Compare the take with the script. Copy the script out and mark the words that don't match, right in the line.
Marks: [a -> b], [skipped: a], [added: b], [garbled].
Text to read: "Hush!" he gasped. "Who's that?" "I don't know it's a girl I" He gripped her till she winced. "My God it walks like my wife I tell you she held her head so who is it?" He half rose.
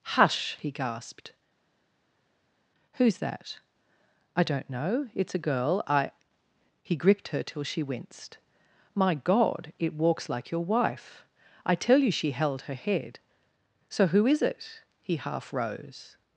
"Hush!" he gasped. "Who's that?" "I don't know it's a girl I" He gripped her till she winced. "My God it walks like [my -> your] wife I tell you she held her head so who is it?" He half rose.